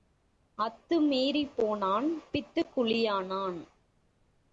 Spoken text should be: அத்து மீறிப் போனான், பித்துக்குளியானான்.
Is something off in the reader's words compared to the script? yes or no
no